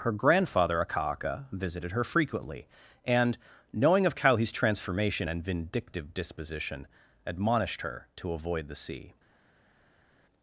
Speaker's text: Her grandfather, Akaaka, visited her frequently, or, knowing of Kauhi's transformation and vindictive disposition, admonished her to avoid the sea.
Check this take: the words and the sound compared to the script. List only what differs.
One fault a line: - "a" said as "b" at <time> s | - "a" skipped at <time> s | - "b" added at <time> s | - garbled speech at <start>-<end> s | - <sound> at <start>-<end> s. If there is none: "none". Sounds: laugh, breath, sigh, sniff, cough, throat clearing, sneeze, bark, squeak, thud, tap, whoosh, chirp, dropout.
- "or" said as "and" at 3.0 s